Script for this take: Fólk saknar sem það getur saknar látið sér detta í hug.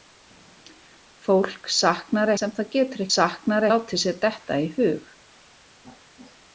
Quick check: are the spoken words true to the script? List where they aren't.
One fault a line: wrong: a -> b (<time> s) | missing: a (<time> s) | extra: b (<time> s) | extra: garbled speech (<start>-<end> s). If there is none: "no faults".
no faults